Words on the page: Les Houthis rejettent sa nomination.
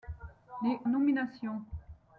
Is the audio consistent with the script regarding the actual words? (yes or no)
no